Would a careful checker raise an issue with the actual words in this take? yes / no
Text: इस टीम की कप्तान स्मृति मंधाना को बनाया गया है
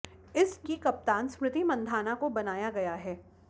yes